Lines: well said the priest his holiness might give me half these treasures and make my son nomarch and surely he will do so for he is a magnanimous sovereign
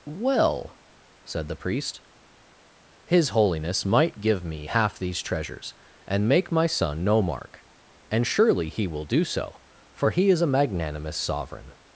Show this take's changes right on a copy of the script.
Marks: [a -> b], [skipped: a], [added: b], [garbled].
well said the priest his holiness might give me half these treasures and make my son nomarch and surely he will do so for he is a magnanimous sovereign